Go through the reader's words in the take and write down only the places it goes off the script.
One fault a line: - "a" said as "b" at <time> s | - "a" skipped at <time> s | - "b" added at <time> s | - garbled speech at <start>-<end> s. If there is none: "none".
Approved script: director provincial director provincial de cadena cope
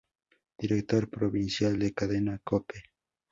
- "director provincial" skipped at 1.8 s